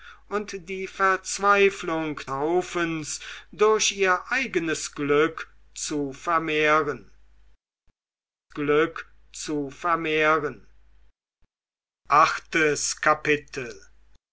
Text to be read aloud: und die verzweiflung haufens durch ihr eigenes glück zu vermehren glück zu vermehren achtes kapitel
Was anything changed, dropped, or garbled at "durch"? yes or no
no